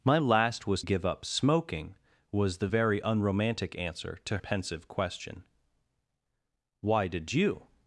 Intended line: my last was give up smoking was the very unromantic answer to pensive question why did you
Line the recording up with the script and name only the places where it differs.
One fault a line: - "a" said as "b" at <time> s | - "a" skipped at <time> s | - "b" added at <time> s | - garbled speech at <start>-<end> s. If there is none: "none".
none